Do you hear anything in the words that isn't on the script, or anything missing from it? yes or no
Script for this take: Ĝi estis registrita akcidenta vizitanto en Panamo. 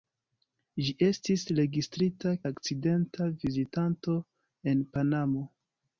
no